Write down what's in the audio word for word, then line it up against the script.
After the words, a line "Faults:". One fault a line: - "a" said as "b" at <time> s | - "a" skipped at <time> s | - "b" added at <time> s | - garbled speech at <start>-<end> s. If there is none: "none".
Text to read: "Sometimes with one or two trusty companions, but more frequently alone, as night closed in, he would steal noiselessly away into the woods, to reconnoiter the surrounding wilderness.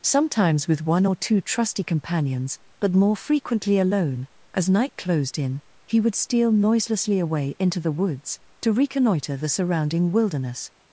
"Sometimes with one or two trusty companions, but more frequently alone, as night closed in, he would steal noiselessly away into the woods, to reconnoiter the surrounding wilderness.
Faults:
none